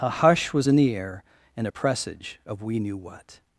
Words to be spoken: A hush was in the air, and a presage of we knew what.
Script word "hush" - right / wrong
right